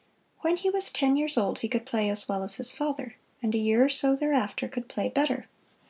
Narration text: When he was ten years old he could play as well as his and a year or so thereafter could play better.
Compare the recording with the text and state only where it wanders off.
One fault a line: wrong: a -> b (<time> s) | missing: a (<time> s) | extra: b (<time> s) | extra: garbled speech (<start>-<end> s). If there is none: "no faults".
extra: father (2.7 s)